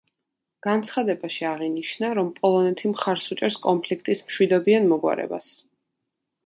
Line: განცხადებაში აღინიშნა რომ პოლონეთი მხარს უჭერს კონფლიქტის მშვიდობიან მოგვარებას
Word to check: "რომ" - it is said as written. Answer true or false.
true